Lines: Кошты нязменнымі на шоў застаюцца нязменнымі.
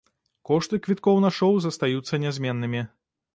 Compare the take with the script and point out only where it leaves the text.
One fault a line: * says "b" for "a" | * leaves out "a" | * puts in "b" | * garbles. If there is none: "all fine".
* says "квіткоў" for "нязменнымі"